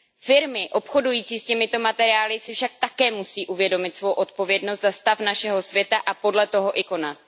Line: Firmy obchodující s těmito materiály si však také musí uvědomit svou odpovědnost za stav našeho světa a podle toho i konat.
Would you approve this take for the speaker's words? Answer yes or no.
yes